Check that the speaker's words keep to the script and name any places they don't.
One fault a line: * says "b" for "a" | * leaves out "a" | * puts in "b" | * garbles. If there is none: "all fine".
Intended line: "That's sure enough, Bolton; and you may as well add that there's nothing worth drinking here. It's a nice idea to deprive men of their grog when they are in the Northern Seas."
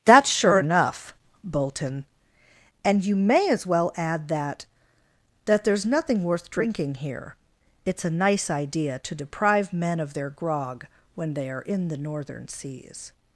* puts in "that"